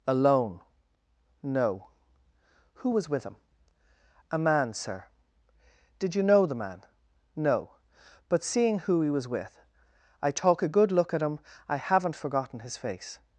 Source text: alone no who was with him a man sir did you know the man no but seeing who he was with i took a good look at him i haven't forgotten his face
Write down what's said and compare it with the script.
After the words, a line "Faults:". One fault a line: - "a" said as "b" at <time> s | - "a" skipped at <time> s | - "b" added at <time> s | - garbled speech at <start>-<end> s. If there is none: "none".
alone no who was with him a man sir did you know the man no but seeing who he was with i talk a good look at him i haven't forgotten his face
Faults:
- "took" said as "talk" at 10.3 s